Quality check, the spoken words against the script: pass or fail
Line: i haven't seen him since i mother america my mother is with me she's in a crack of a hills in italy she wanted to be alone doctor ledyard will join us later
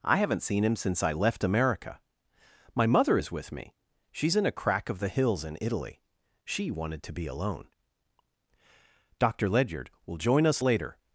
fail